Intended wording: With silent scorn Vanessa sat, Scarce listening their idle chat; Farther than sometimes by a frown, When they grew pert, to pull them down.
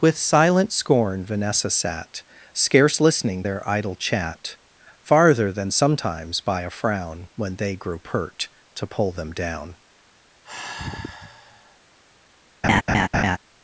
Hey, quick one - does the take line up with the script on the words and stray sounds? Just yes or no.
no